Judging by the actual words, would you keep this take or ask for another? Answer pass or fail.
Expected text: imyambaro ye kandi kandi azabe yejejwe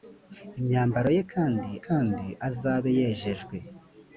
pass